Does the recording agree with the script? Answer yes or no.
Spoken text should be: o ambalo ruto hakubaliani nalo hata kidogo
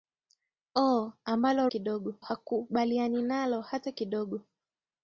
no